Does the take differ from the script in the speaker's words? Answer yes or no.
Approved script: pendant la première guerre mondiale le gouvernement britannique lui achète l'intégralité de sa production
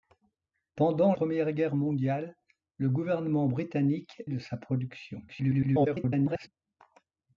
yes